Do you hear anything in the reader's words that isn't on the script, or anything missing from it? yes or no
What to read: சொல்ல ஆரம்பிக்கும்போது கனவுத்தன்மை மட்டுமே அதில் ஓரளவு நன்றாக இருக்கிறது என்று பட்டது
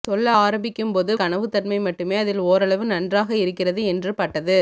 no